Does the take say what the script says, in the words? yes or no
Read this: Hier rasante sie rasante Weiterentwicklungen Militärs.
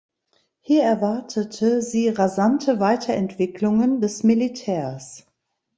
no